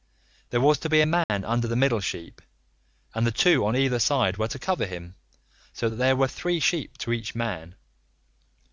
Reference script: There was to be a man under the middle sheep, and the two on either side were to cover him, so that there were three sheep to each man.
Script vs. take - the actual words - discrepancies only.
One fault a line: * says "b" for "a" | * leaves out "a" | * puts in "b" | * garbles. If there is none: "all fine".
all fine